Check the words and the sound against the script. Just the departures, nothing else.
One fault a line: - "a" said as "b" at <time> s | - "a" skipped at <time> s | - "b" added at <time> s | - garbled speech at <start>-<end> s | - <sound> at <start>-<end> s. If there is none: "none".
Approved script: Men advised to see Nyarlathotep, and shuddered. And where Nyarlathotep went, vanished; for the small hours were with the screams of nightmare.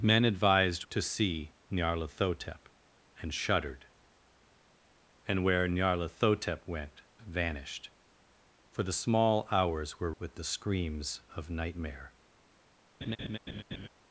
- laugh at 13.0-13.9 s